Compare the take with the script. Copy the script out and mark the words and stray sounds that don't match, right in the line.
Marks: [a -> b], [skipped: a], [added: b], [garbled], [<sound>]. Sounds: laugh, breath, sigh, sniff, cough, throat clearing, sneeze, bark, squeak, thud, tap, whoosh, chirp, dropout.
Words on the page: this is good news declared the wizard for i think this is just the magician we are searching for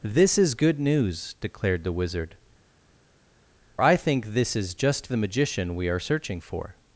this is good news declared the wizard [skipped: for] i think this is just the magician we are searching for